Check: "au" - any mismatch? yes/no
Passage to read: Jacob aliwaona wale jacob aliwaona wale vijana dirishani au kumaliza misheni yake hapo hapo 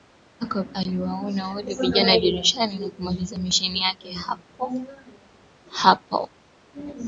yes